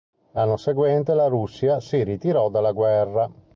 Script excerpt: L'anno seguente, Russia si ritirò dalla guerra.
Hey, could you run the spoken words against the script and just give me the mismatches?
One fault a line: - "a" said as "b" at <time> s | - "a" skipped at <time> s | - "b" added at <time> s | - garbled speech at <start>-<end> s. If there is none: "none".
- "la" added at 1.1 s